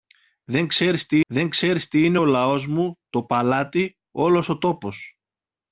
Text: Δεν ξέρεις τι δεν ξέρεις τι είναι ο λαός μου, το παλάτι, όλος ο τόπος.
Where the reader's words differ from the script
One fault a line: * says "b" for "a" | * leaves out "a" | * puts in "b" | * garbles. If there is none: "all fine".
all fine